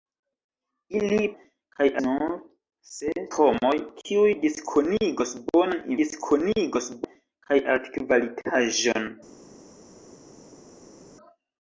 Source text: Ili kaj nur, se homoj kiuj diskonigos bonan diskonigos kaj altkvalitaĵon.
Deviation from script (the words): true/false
false